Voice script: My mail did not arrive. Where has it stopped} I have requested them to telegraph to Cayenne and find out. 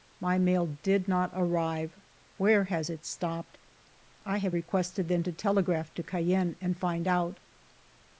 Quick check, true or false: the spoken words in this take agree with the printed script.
true